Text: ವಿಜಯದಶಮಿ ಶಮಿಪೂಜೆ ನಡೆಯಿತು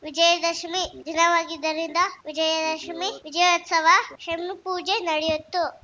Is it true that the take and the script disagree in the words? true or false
true